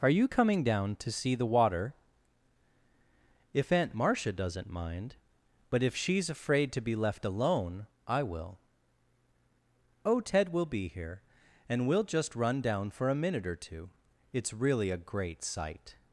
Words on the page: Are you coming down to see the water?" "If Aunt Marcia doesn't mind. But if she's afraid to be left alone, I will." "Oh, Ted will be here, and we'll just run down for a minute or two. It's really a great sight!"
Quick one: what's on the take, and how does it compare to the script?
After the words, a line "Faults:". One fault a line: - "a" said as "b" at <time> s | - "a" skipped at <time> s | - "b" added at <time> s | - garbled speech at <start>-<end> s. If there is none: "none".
Are you coming down to see the water?" "If Aunt Marcia doesn't mind. But if she's afraid to be left alone, I will." "Oh, Ted will be here, and we'll just run down for a minute or two. It's really a great sight!"
Faults:
none